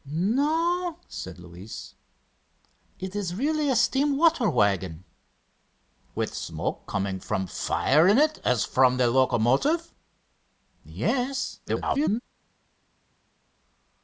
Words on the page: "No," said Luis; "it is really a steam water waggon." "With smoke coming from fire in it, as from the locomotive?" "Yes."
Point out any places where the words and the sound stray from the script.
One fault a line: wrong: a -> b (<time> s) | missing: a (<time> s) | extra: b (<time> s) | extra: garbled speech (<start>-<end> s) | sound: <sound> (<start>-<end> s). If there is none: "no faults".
extra: garbled speech (11.7-12.2 s)